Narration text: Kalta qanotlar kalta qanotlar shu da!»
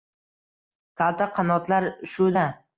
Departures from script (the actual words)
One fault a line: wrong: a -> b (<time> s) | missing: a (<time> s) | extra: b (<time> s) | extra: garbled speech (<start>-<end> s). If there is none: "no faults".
missing: kalta qanotlar (1.9 s)